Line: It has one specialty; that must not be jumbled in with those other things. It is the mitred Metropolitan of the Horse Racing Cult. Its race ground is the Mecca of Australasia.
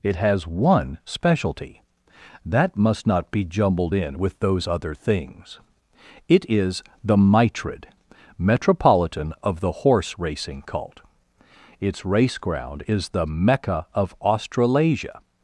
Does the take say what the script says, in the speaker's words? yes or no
yes